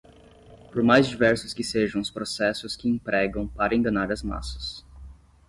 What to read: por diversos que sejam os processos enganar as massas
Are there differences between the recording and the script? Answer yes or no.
yes